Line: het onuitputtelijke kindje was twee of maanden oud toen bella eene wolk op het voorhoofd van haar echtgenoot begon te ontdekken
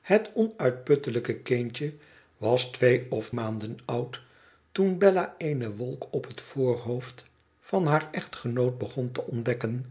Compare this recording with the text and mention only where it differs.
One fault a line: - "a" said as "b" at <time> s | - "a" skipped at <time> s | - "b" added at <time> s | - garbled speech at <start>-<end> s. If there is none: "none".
none